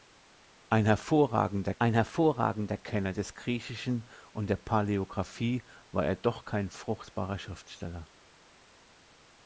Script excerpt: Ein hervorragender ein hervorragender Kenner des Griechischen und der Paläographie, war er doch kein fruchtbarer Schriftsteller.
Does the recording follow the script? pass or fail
pass